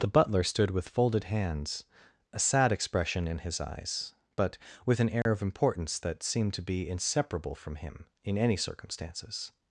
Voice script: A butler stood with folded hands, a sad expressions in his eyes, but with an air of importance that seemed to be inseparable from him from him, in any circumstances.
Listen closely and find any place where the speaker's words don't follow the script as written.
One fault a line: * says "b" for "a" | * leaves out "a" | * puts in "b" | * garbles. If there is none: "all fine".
* says "The" for "A"
* says "expression" for "expressions"
* leaves out "from him"